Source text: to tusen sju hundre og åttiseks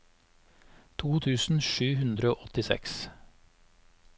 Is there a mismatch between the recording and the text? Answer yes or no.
no